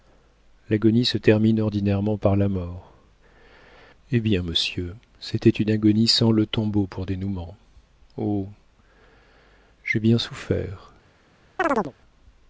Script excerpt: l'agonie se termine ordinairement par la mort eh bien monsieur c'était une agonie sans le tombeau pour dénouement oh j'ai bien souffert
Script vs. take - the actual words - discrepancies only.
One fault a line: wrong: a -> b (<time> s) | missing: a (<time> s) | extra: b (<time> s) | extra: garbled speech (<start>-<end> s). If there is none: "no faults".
no faults